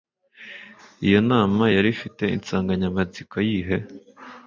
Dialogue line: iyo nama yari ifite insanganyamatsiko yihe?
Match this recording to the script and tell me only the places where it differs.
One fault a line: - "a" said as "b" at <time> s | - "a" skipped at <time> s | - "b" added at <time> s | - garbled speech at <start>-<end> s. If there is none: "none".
none